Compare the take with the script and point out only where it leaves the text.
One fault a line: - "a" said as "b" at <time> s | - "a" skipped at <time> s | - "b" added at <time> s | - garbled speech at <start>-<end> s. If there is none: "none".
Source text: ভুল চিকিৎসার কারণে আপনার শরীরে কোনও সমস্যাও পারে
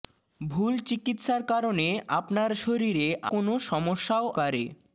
none